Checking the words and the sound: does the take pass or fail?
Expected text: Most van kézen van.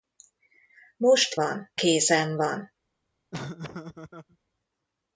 fail